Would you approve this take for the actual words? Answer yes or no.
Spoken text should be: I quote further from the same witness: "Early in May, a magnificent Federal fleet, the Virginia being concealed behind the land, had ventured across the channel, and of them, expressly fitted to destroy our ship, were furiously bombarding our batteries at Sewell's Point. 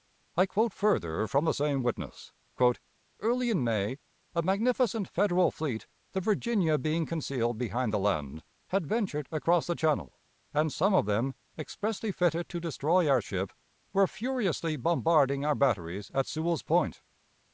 no